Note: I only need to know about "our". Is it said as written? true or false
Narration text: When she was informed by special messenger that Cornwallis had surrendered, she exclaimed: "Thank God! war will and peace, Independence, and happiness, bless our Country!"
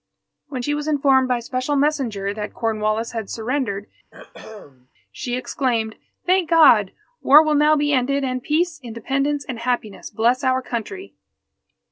true